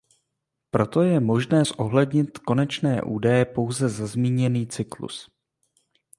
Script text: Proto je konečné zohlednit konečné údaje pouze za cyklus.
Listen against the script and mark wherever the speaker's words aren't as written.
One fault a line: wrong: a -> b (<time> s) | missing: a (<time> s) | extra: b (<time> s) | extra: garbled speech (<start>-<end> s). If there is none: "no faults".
wrong: konečné -> možné (1.2 s)
extra: zmíněný (4.1 s)